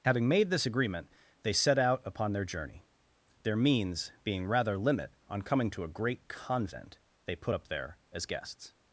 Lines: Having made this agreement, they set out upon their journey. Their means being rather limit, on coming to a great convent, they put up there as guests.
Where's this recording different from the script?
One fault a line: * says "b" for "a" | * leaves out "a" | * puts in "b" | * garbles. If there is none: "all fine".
all fine